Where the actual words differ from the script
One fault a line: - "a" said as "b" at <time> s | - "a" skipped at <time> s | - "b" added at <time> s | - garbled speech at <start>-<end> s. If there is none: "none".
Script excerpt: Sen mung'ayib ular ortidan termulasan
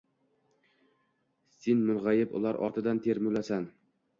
none